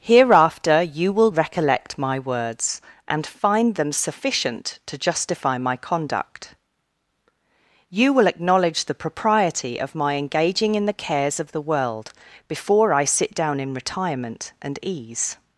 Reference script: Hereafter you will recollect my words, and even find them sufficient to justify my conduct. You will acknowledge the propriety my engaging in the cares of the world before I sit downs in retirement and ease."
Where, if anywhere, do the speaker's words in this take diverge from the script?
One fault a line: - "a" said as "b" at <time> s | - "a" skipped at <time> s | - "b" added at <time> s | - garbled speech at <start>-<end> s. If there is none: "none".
- "even" skipped at 3.3 s
- "of" added at 9.8 s
- "downs" said as "down" at 13.3 s